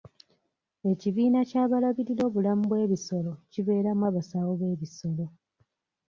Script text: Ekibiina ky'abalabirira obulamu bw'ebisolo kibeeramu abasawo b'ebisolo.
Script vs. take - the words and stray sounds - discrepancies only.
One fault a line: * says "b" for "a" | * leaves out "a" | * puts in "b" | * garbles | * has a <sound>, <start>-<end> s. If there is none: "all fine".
all fine